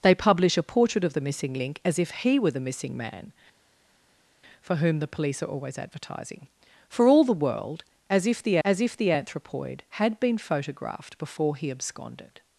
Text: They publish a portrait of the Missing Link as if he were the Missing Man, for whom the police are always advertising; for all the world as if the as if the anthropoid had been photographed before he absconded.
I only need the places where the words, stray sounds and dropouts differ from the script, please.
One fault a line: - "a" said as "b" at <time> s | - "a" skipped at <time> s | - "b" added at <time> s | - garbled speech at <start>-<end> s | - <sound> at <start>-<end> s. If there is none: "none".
none